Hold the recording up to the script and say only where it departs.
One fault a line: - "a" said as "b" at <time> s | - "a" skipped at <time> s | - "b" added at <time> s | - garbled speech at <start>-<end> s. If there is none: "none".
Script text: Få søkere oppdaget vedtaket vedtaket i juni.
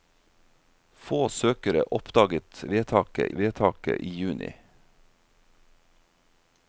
none